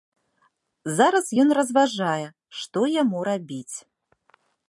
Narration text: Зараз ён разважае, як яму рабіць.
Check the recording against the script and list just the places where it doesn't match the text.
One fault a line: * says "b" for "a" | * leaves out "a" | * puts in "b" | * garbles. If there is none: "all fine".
* says "што" for "як"